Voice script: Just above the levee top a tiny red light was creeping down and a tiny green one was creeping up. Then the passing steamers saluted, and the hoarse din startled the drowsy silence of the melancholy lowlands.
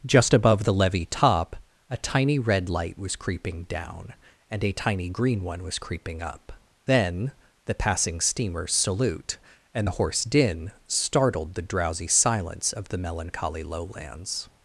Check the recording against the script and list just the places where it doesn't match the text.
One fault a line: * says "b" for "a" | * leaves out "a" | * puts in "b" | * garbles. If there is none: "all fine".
* says "salute" for "saluted"